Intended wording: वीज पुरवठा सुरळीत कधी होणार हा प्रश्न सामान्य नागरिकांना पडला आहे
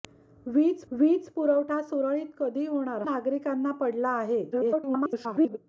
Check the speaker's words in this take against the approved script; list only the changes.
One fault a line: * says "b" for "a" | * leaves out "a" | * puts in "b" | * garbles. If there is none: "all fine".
* puts in "वीज"
* leaves out "हा प्रश्न सामान्य"
* garbles